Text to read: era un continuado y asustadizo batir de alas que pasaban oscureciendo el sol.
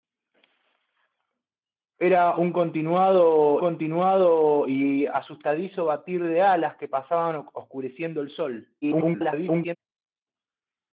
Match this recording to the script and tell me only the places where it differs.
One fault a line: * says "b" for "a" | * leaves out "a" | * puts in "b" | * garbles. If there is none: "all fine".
* puts in "continuado"
* garbles